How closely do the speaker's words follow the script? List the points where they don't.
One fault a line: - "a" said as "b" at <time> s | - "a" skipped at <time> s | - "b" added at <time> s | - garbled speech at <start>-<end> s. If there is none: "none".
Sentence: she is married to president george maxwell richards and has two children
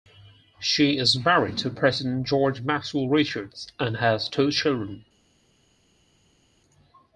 none